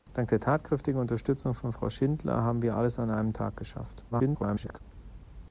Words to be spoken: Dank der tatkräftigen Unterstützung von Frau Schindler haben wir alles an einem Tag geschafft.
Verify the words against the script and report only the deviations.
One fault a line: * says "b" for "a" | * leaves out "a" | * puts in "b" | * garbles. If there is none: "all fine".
* garbles